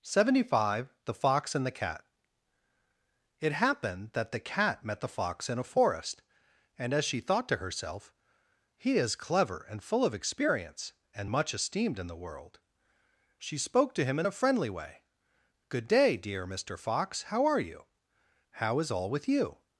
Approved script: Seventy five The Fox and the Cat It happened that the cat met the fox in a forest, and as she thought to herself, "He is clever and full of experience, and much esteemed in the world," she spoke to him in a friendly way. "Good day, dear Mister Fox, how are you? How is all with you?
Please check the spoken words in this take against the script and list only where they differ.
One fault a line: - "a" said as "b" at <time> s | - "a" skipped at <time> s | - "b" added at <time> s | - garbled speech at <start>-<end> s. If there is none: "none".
none